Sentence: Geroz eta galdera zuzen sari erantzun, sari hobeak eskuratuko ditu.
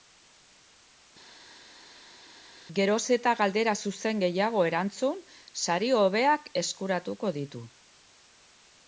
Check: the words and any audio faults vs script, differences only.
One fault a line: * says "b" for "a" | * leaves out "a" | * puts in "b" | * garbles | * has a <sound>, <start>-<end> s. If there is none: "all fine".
* says "gehiago" for "sari"